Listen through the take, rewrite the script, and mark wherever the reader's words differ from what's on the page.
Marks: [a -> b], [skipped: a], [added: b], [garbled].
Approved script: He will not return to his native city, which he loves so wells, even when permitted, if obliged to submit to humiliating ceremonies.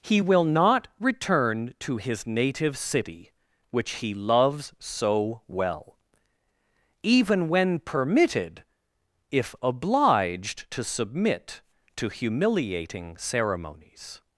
He will not return to his native city, which he loves so [wells, -> well] even when permitted, if obliged to submit to humiliating ceremonies.